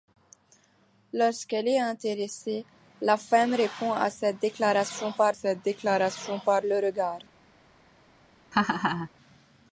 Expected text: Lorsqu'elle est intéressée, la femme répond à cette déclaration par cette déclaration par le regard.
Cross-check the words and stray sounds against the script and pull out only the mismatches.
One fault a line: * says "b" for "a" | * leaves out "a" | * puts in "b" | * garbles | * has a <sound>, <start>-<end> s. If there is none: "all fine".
* has a laugh, 8.5-9.1 s